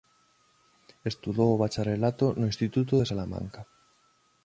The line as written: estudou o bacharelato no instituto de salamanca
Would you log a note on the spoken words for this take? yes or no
no